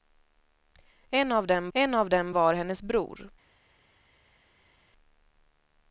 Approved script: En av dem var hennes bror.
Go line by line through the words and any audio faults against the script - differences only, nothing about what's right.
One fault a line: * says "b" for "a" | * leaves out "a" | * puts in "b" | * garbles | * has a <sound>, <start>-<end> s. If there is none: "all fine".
* puts in "en av dem"